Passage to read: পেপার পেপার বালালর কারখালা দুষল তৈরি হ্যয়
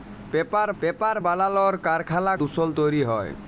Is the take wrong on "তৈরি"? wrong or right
right